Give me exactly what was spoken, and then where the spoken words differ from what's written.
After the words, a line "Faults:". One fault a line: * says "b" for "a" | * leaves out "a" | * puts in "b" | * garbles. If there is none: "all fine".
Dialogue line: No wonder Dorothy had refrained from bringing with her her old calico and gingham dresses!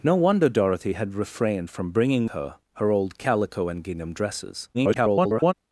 No wonder Dorothy had refrained from bringing her her old calico and gingham dresses! [garbled]
Faults:
* leaves out "with"
* garbles